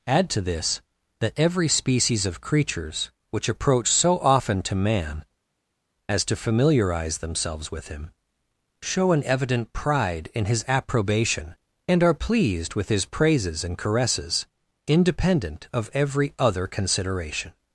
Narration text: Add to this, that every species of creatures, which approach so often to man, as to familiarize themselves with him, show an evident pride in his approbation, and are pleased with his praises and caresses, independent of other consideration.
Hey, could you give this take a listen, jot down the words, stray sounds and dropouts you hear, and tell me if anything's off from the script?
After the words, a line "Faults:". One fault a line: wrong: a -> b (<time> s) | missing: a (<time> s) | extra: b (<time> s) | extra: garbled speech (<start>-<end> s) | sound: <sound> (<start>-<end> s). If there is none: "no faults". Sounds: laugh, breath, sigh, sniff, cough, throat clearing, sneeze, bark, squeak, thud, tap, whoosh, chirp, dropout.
Add to this, that every species of creatures, which approach so often to man, as to familiarize themselves with him, show an evident pride in his approbation, and are pleased with his praises and caresses, independent of every other consideration.
Faults:
extra: every (15.9 s)